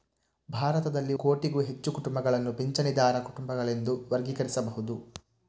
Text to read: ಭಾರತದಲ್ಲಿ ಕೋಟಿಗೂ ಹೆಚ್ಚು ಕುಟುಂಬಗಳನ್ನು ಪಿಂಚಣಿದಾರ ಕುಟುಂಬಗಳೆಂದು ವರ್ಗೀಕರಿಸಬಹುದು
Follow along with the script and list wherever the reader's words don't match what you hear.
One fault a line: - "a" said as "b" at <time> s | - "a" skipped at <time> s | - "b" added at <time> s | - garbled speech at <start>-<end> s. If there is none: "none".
none